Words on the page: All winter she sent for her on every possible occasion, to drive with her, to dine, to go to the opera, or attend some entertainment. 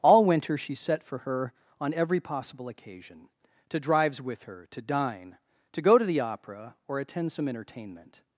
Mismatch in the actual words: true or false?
true